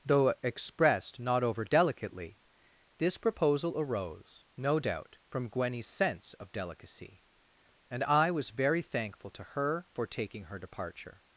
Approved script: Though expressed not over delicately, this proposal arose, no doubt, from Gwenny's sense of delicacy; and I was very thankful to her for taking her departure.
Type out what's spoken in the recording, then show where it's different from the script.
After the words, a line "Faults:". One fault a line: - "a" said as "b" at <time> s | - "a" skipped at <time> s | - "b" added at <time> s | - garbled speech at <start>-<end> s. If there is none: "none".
Though expressed not over delicately, this proposal arose, no doubt, from Gwenny's sense of delicacy; and I was very thankful to her for taking her departure.
Faults:
none